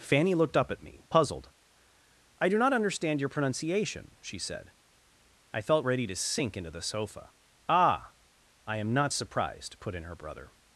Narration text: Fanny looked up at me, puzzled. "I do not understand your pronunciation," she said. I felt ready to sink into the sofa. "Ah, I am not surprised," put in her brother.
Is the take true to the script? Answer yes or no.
yes